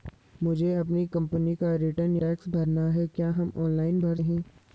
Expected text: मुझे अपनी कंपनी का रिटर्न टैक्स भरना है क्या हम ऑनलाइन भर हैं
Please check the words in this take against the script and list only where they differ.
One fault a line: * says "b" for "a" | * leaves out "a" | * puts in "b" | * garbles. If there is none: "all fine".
all fine